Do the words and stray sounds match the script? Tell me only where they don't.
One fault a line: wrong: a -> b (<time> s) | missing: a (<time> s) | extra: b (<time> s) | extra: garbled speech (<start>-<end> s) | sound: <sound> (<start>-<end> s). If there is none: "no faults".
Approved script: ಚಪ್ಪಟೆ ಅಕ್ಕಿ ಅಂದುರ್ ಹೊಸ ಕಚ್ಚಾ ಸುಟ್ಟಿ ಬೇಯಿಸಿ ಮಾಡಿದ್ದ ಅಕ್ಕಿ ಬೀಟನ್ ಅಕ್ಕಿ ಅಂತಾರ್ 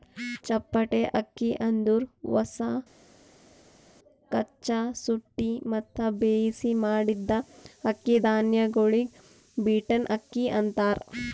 extra: ಮತ್ತ (5.7 s)
extra: ಧಾನ್ಯಗೊಳಿಗ್ (8.3 s)